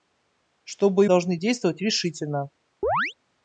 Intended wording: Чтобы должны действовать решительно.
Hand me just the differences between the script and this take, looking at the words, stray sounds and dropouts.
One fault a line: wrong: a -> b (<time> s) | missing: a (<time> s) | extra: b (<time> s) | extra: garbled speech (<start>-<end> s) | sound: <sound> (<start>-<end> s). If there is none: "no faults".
sound: chirp (2.8-3.1 s)